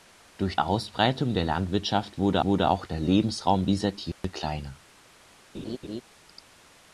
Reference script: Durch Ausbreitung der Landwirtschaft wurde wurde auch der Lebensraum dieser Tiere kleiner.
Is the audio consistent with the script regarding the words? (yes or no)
yes